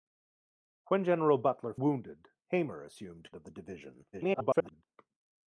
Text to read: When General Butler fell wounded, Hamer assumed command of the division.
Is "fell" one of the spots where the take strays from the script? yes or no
yes